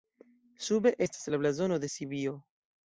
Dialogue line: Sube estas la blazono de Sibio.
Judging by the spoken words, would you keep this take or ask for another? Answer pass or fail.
pass